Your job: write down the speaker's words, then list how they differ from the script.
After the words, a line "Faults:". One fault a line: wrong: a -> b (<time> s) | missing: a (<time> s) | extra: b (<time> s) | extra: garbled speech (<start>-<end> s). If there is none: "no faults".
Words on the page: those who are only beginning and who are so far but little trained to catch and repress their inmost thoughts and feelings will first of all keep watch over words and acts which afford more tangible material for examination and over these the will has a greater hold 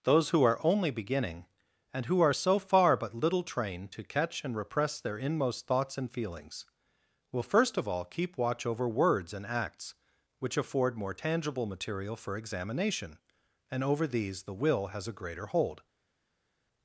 those who are only beginning and who are so far but little trained to catch and repress their inmost thoughts and feelings will first of all keep watch over words and acts which afford more tangible material for examination and over these the will has a greater hold
Faults:
no faults